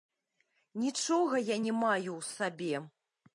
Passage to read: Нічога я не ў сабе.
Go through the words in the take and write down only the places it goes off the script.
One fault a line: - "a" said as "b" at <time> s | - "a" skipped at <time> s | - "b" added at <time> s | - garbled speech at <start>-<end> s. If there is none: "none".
- "маю" added at 1.8 s